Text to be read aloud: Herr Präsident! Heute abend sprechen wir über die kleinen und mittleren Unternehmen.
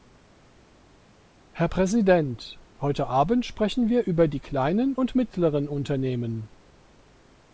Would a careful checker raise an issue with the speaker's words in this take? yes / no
no